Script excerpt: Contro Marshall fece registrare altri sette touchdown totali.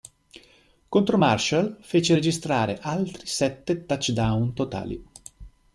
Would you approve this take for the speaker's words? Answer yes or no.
yes